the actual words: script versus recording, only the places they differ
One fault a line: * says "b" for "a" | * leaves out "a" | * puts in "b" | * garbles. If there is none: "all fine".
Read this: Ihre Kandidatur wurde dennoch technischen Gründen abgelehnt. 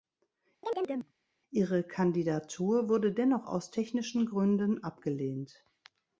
* puts in "aus"